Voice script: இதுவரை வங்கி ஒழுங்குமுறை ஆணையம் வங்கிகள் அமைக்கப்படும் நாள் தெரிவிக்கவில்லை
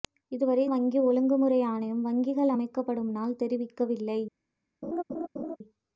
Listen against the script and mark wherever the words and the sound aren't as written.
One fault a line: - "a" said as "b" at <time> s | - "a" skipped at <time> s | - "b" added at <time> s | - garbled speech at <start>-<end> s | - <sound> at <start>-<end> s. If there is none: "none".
- laugh at 4.8-5.6 s